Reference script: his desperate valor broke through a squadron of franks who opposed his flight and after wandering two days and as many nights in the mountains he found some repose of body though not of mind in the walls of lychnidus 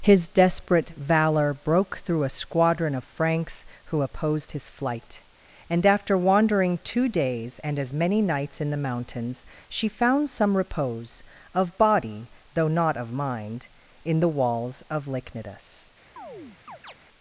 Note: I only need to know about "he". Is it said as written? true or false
false